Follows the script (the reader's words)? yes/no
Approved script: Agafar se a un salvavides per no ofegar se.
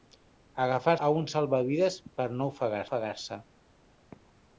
no